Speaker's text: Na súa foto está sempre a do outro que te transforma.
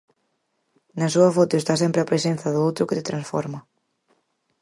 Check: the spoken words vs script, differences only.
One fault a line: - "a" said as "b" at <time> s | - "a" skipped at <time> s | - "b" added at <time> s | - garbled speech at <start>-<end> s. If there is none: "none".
- "presenza" added at 2.1 s